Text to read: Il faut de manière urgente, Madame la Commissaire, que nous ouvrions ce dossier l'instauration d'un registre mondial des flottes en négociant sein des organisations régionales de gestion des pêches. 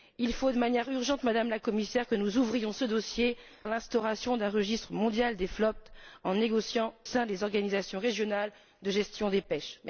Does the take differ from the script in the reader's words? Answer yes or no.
no